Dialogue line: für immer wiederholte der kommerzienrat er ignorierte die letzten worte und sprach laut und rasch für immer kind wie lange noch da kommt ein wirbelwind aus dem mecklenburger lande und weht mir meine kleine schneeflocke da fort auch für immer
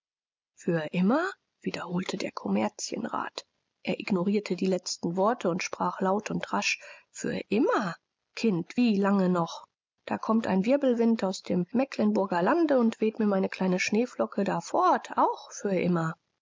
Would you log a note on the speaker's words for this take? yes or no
no